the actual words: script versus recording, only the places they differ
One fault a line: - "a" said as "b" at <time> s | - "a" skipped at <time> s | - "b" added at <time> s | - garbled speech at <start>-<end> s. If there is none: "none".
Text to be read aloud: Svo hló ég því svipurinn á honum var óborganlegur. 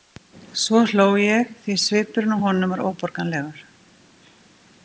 none